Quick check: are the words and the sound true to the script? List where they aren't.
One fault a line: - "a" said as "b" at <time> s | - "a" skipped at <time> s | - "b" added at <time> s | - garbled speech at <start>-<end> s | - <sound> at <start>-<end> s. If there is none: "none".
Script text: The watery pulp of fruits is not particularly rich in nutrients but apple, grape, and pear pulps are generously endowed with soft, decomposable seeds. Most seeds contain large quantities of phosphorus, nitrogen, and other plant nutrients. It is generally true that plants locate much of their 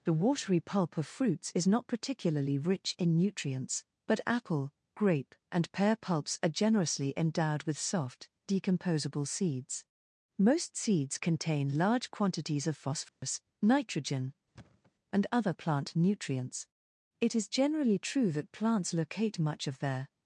- dropout at 13.1-13.2 s
- thud at 14.5-14.9 s